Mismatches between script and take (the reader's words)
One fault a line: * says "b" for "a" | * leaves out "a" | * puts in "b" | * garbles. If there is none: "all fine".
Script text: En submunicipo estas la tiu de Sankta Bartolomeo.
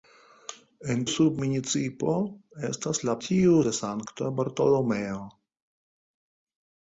all fine